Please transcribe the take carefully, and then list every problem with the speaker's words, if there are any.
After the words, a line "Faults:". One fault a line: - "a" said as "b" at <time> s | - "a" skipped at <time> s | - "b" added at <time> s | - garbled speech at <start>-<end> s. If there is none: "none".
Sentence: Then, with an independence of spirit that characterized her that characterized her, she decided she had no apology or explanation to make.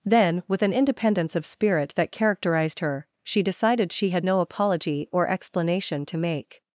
Then, with an independence of spirit that characterized her, she decided she had no apology or explanation to make.
Faults:
- "that characterized her" skipped at 3.1 s